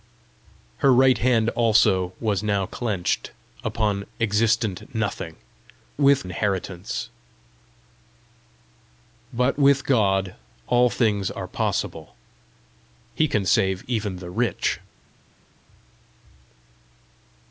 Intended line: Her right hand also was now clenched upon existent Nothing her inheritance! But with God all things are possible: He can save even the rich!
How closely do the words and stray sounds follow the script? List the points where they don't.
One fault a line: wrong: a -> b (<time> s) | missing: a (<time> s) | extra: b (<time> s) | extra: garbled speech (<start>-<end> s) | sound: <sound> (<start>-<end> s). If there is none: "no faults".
wrong: her -> with (6.0 s)